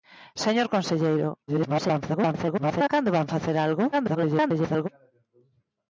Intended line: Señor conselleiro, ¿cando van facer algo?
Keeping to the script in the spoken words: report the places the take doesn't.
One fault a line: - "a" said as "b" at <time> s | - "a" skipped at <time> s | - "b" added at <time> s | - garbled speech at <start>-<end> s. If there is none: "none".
- garbled speech at 1.5-2.9 s
- garbled speech at 3.9-4.9 s